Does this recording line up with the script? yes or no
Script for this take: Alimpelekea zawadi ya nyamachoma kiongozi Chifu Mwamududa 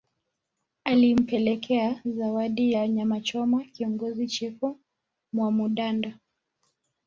yes